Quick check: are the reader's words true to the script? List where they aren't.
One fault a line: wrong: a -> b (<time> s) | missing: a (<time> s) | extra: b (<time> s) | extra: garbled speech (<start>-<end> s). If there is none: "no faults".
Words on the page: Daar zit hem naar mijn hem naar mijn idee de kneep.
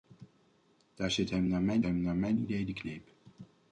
no faults